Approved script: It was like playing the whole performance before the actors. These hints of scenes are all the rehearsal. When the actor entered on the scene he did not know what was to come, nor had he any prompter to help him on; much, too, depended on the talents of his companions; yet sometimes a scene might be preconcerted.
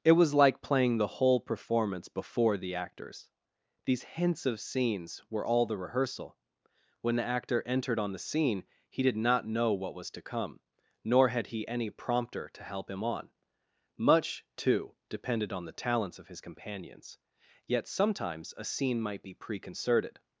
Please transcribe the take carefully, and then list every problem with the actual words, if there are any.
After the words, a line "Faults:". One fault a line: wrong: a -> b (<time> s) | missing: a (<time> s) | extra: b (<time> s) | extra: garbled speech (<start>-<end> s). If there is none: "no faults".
It was like playing the whole performance before the actors. These hints of scenes were all the rehearsal. When the actor entered on the scene he did not know what was to come, nor had he any prompter to help him on; much, too, depended on the talents of his companions; yet sometimes a scene might be preconcerted.
Faults:
wrong: are -> were (5.3 s)